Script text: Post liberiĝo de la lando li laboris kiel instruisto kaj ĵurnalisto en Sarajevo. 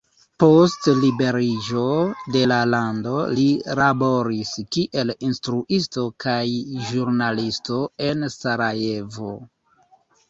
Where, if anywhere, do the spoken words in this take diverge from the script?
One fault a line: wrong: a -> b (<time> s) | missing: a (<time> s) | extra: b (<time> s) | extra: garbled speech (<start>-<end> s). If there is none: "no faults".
no faults